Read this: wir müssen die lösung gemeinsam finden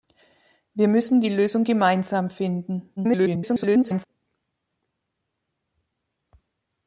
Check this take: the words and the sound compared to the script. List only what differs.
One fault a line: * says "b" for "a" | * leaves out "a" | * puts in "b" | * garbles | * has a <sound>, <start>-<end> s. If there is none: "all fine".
* garbles